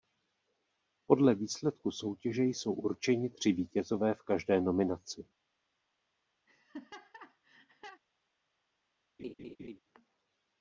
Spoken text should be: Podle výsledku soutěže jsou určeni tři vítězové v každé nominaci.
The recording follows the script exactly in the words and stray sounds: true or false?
false